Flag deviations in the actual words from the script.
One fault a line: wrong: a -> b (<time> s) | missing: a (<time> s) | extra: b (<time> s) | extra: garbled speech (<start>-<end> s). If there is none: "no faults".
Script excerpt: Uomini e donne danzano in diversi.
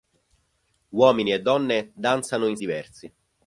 no faults